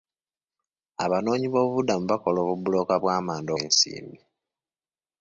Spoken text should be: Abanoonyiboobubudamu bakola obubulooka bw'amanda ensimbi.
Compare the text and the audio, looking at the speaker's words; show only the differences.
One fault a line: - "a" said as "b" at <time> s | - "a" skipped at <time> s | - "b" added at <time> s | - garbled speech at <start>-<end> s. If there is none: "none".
none